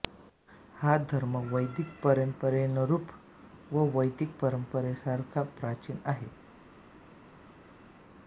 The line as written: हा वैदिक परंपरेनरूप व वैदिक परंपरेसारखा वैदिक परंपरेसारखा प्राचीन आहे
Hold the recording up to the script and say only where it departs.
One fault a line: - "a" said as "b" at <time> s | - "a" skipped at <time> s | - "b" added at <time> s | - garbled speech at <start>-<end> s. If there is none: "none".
- "धर्म" added at 1.1 s
- "वैदिक परंपरेसारखा" skipped at 5.4 s